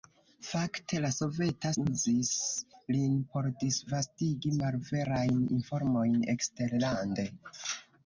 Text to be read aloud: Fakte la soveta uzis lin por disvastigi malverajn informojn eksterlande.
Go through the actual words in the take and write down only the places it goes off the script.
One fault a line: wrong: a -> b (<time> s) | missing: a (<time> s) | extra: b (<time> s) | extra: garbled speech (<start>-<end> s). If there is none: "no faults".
no faults